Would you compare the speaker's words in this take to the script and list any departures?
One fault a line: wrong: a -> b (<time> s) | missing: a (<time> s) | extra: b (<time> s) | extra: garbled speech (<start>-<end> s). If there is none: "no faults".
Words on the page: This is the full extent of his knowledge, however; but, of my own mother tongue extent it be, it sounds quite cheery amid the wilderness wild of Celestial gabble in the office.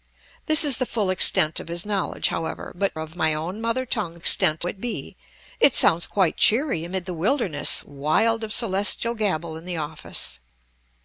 no faults